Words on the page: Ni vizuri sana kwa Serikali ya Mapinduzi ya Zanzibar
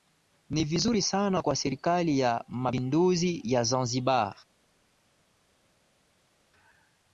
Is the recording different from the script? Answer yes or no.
no